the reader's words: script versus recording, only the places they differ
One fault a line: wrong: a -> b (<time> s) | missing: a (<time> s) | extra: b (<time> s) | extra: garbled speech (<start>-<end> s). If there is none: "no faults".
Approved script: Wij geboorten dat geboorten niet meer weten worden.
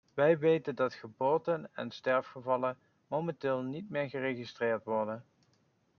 wrong: geboorten -> weten (0.4 s)
extra: en sterfgevallen momenteel (1.8 s)
wrong: weten -> geregistreerd (4.1 s)